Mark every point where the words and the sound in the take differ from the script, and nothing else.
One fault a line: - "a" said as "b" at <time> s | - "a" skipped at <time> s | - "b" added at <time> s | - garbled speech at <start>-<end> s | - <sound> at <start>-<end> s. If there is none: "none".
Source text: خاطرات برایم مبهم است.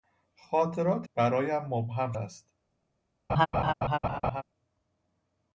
- laugh at 3.3-4.4 s